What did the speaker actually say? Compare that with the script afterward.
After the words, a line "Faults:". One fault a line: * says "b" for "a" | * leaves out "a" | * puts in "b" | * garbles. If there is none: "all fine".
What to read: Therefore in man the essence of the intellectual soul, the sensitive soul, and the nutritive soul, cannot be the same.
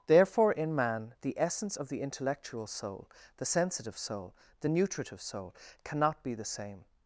Therefore in man the essence of the intellectual soul, the sensitive soul, the nutritive soul, cannot be the same.
Faults:
* leaves out "and"